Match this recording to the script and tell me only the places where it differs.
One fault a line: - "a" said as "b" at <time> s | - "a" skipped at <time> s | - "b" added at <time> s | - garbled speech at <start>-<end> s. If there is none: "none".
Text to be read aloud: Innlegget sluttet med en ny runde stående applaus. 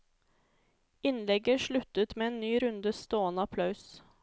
none